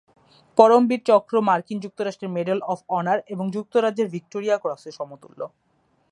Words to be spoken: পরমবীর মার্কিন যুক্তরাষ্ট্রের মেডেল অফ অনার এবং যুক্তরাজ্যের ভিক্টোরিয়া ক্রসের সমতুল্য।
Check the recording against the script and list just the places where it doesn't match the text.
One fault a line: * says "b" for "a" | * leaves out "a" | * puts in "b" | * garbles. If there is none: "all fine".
* puts in "চক্র"